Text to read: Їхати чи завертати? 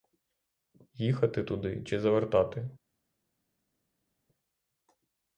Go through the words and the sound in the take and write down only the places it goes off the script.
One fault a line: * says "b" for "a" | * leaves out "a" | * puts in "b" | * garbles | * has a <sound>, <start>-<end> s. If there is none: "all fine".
* puts in "туди"